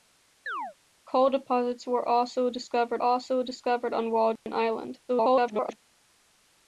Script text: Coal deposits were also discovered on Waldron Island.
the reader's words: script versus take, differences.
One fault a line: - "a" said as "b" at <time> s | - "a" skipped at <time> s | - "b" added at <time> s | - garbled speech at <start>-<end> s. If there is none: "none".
- "also discovered" added at 3.0 s
- garbled speech at 5.1-5.8 s